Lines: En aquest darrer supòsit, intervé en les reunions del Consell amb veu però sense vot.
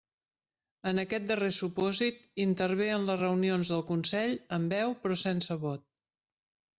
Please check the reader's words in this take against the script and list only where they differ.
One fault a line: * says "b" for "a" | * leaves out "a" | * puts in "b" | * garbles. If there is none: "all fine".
all fine